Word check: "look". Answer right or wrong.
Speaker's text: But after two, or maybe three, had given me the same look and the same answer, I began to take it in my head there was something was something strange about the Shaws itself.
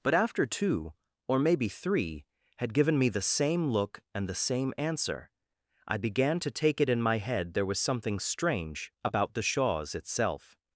right